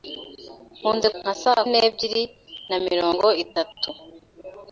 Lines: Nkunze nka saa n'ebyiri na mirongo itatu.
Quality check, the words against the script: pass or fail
pass